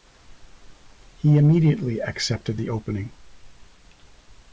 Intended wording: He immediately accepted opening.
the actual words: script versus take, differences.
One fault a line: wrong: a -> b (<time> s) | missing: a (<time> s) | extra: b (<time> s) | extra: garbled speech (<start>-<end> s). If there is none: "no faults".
extra: the (2.5 s)